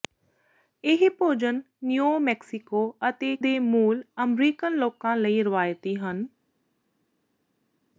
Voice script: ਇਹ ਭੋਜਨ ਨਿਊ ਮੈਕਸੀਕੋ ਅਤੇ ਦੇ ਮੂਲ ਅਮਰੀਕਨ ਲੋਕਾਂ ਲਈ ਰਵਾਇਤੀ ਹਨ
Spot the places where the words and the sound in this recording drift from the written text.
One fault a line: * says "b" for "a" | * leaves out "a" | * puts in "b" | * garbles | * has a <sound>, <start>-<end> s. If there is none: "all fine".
all fine